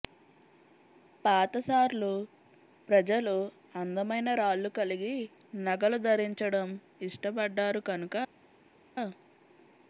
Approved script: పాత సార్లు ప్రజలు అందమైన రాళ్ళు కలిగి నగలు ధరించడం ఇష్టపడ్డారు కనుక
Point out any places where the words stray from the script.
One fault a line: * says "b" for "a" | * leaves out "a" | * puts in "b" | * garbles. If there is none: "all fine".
all fine